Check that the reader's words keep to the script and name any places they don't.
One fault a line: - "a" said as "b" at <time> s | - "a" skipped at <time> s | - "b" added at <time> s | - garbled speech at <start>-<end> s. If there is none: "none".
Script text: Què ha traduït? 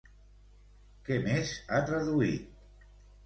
- "més" added at 1.2 s